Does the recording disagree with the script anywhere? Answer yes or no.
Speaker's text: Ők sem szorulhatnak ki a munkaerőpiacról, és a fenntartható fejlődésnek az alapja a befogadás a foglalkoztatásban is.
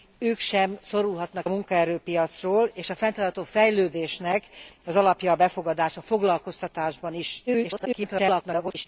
yes